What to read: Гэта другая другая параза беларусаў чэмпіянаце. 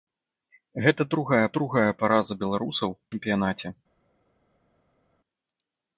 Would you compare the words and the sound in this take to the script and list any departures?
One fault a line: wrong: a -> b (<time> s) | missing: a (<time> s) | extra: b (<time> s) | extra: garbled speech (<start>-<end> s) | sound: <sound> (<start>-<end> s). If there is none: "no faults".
no faults